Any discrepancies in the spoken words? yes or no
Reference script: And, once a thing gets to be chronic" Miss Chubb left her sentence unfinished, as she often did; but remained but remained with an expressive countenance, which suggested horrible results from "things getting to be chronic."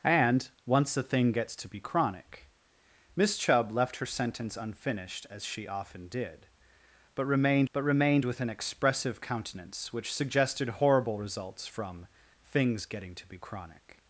no